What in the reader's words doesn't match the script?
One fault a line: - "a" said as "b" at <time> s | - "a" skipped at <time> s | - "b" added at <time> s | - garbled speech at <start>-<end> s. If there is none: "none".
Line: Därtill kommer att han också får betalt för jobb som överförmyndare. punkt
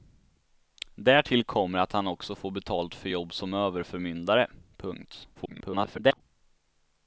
- garbled speech at 5.3-6.2 s